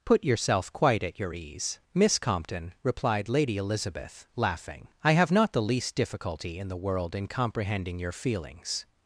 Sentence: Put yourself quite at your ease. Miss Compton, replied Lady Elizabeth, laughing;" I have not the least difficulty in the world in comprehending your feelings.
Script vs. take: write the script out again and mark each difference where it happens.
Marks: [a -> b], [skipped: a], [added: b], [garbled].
Put yourself quite at your ease. Miss Compton, replied Lady Elizabeth, laughing;" I have not the least difficulty in the world in comprehending your feelings.